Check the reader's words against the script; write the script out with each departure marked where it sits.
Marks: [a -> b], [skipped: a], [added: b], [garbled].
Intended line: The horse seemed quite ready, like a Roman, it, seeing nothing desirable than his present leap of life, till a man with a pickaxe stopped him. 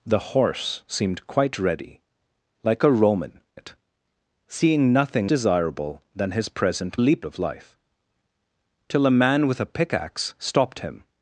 The horse seemed quite ready, like a Roman, it, seeing nothing desirable than his present leap of life, till a man with a pickaxe stopped him.